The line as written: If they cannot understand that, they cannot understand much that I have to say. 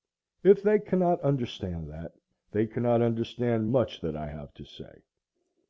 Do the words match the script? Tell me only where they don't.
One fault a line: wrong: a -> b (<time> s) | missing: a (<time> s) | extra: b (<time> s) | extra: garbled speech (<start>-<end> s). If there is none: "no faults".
no faults